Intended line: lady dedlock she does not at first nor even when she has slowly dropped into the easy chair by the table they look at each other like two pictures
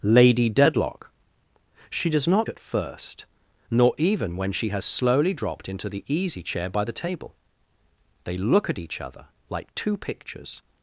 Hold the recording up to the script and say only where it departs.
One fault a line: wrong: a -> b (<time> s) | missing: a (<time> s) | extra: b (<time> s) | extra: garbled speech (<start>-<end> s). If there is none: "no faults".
no faults